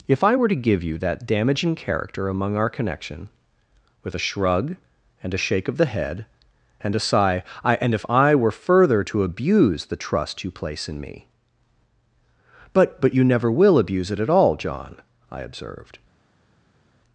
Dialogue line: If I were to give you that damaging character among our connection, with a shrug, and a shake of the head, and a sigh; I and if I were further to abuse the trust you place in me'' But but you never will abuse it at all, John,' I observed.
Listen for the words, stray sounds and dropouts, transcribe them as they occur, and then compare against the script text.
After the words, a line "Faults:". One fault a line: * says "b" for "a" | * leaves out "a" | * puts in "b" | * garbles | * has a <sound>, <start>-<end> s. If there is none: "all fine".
If I were to give you that damaging character among our connection, with a shrug, and a shake of the head, and a sigh; I and if I were further to abuse the trust you place in me'' But but you never will abuse it at all, John,' I observed.
Faults:
all fine